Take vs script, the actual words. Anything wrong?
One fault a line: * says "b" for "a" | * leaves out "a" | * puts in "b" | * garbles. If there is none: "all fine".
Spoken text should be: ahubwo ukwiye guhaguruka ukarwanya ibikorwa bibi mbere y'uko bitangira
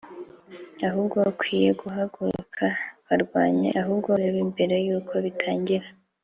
* says "ahubwo" for "ibikorwa"